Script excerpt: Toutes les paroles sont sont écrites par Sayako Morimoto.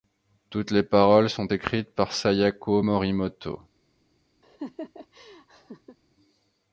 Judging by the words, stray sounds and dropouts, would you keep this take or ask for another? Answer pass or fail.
fail